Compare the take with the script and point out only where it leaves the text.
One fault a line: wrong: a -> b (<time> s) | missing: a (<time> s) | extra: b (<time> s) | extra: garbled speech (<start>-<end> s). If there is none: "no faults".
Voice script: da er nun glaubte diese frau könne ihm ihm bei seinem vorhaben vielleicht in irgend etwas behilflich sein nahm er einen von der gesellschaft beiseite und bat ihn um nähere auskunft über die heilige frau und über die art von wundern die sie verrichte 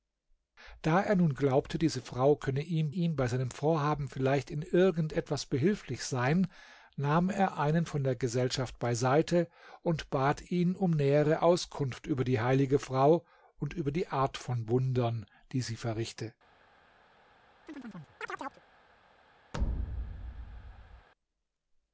no faults